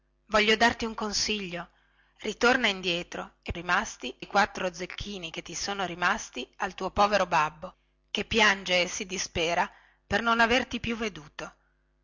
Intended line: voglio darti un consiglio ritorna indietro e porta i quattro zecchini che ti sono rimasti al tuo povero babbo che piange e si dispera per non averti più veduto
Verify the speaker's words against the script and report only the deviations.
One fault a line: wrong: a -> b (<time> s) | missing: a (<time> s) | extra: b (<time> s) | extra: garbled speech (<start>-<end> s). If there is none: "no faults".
wrong: porta -> rimasti (3.5 s)